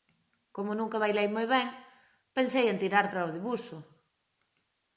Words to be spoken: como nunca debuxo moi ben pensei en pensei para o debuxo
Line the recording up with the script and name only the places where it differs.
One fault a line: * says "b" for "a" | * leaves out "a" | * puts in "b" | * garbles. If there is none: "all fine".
* says "bailei" for "debuxo"
* says "tirar" for "pensei"